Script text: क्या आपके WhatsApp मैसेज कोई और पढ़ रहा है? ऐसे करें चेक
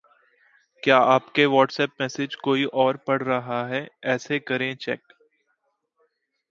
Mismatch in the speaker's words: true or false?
false